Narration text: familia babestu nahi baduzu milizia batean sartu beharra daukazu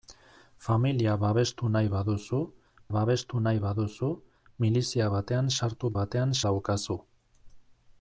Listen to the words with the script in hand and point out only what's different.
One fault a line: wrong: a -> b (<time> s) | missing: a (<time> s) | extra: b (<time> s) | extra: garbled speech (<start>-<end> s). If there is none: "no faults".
extra: babestu nahi baduzu (3.0 s)
wrong: beharra -> batean (6.0 s)